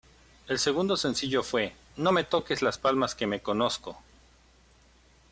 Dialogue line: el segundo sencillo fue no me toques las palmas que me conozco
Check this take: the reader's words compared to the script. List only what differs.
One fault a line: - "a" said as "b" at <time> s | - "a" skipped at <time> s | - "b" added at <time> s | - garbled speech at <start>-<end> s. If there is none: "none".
none